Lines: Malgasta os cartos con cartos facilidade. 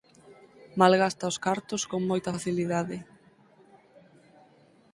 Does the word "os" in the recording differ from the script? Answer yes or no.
no